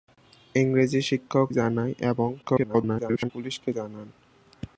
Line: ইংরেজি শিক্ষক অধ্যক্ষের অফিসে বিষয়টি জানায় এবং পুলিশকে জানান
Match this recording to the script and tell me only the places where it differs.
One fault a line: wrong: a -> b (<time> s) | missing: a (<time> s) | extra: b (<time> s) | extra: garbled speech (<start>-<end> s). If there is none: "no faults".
missing: অধ্যক্ষের অফিসে বিষয়টি (1.5 s)
extra: garbled speech (2.4-3.3 s)